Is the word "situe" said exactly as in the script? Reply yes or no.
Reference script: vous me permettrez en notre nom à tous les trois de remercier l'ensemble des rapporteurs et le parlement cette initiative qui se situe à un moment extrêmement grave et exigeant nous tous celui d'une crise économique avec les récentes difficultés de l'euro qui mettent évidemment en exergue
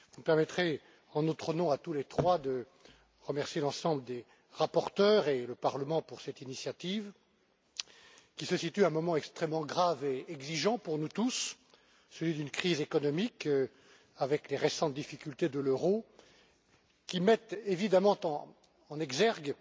yes